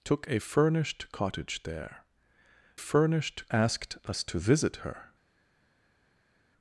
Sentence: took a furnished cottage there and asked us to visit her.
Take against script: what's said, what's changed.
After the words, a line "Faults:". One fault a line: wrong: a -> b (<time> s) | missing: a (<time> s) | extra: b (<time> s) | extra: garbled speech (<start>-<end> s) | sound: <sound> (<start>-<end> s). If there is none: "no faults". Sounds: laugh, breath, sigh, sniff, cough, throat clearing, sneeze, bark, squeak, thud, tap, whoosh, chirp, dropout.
took a furnished cottage there furnished asked us to visit her.
Faults:
wrong: and -> furnished (2.8 s)